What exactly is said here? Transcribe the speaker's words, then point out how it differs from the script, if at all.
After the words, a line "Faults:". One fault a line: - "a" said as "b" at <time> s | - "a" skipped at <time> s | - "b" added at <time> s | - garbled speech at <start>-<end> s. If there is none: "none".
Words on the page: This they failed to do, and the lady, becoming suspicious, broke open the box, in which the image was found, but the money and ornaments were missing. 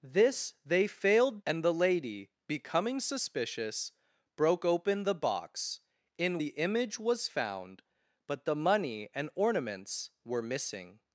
This they failed and the lady, becoming suspicious, broke open the box, in the image was found, but the money and ornaments were missing.
Faults:
- "to do" skipped at 1.4 s
- "which" skipped at 6.4 s